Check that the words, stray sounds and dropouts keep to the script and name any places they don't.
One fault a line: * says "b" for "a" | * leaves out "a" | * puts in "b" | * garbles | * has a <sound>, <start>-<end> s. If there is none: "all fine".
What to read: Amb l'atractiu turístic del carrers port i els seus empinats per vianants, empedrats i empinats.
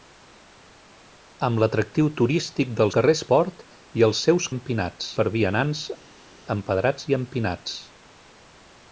all fine